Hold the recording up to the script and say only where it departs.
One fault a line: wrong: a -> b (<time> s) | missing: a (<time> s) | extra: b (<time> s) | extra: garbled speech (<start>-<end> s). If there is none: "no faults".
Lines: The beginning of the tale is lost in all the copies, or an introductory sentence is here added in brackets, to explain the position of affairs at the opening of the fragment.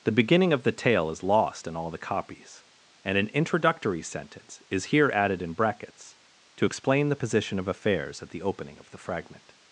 wrong: or -> and (3.0 s)